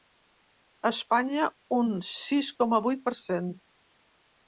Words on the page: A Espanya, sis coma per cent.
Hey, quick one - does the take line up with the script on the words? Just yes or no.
no